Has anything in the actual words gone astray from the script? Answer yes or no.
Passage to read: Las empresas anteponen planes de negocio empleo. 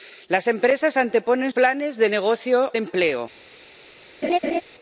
no